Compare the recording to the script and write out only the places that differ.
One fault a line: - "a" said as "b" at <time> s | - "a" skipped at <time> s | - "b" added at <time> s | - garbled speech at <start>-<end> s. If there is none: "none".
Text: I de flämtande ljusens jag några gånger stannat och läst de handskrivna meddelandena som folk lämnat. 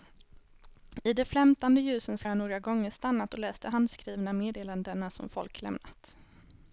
none